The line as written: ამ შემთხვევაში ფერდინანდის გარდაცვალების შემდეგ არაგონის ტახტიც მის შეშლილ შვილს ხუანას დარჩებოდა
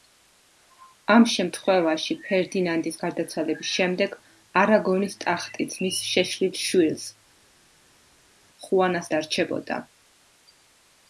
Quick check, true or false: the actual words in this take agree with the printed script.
true